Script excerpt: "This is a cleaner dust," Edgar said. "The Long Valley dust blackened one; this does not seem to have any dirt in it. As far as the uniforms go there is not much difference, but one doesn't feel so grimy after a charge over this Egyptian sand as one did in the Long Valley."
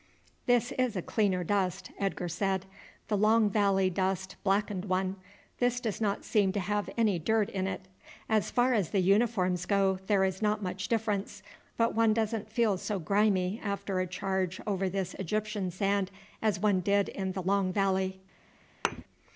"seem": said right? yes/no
yes